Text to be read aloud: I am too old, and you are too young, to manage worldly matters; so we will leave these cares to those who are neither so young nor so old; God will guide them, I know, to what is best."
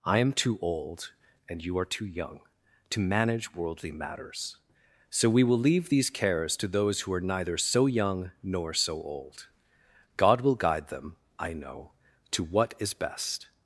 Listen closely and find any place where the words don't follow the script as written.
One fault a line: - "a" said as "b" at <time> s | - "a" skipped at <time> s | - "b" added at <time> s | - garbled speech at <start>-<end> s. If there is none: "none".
none